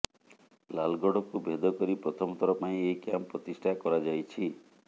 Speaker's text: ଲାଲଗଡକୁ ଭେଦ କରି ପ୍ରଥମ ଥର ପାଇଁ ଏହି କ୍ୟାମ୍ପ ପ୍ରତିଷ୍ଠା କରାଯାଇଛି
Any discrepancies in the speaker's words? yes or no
no